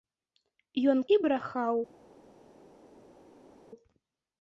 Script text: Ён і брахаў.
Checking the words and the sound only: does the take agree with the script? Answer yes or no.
yes